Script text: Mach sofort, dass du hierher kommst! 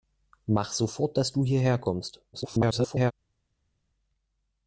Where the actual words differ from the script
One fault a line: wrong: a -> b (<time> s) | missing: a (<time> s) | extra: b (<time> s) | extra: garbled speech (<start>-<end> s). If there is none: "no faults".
extra: garbled speech (2.3-3.1 s)